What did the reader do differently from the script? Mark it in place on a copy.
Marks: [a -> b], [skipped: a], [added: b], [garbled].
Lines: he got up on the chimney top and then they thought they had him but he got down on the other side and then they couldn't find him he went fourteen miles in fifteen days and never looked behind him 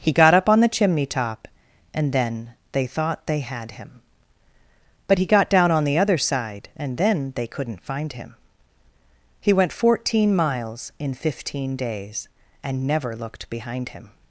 he got up on the chimney top and then they thought they had him but he got down on the other side and then they couldn't find him he went fourteen miles in fifteen days and never looked behind him